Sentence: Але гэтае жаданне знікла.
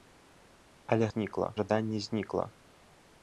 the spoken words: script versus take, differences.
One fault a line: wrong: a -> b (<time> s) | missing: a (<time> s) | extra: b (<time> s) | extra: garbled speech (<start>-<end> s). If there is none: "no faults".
wrong: гэтае -> знікла (1.1 s)